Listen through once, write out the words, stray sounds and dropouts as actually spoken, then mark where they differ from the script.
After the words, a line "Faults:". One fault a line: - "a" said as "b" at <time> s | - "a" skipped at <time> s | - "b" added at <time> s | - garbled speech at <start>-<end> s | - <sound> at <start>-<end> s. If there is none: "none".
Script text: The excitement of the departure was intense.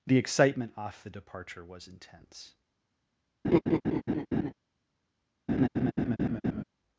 The excitement off the departure was intense.
Faults:
- "of" said as "off" at 0.8 s
- laugh at 3.4-4.5 s
- laugh at 5.5-6.6 s